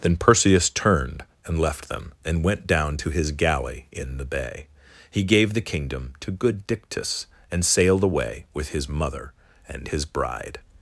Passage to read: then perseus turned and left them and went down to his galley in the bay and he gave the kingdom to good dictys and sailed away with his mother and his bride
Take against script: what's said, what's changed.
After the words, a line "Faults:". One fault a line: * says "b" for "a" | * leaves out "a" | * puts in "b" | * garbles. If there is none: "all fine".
then perseus turned and left them and went down to his galley in the bay he gave the kingdom to good dictys and sailed away with his mother and his bride
Faults:
* leaves out "and"